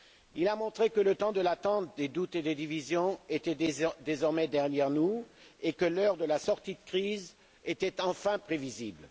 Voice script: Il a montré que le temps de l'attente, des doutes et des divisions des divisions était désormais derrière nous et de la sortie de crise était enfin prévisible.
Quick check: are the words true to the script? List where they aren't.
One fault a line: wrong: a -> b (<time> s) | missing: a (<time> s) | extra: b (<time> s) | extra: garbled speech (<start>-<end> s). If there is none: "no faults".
missing: des divisions (3.2 s)
extra: que l'heure (5.7 s)